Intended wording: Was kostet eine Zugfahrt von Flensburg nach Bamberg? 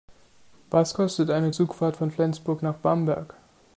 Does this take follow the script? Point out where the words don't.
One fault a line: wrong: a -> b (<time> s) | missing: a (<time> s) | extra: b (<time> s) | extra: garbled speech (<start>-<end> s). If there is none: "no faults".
no faults